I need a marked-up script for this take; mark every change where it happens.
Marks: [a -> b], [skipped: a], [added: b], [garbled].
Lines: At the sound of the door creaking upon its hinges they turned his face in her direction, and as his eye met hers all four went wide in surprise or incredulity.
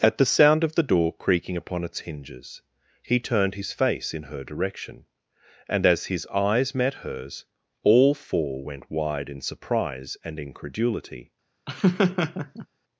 At the sound of the door creaking upon its hinges [they -> he] turned his face in her direction, and as his [eye -> eyes] met hers all four went wide in surprise [or -> and] incredulity.